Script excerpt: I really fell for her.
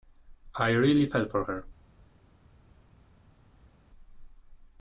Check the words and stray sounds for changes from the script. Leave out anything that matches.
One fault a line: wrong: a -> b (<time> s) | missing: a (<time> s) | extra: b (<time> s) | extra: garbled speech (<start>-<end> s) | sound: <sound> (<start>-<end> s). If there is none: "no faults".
no faults